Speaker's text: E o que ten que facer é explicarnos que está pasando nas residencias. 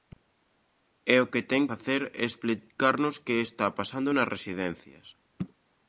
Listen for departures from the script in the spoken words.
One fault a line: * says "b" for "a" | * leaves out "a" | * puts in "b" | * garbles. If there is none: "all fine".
* leaves out "que"